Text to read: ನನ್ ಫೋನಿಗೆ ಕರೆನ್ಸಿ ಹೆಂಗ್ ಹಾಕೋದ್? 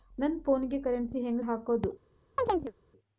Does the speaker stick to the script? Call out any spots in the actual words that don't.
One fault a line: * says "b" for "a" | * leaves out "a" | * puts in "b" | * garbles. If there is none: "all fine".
all fine